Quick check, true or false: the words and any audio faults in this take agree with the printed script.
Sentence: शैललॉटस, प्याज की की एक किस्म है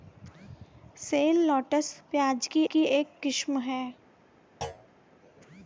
false